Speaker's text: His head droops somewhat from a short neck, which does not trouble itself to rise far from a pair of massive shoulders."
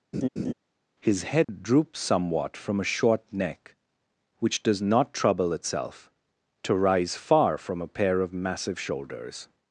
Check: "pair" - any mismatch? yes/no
no